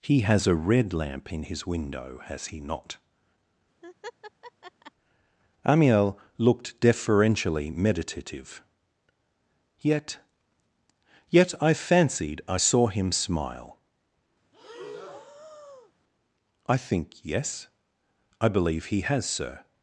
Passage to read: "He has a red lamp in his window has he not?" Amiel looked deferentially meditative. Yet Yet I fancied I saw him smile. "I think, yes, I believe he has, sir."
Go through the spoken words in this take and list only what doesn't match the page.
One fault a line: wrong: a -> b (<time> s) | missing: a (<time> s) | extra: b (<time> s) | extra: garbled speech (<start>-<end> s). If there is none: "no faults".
no faults